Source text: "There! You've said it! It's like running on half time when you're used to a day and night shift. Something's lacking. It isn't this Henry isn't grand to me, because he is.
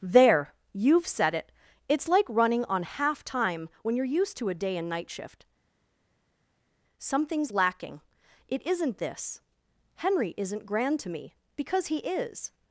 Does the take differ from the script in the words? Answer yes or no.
no